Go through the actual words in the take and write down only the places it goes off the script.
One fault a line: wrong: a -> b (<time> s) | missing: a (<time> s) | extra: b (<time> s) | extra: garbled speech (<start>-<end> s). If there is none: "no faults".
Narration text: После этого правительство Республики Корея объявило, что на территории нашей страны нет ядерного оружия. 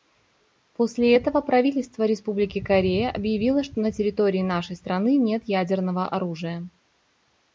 no faults